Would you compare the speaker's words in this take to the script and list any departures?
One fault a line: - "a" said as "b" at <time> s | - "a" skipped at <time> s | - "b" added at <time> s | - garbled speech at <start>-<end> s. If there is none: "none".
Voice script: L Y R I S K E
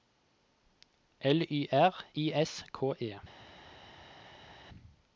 none